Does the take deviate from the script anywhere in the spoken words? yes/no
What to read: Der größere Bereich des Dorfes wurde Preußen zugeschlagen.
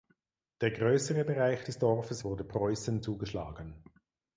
no